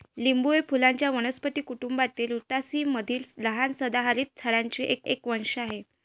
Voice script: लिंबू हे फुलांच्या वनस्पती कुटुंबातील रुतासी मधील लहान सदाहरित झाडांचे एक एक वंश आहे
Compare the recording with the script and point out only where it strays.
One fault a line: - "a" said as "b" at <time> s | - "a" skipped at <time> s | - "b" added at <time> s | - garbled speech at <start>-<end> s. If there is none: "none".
none